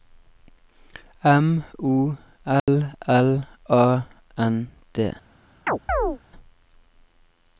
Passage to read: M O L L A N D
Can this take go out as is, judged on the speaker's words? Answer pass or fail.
pass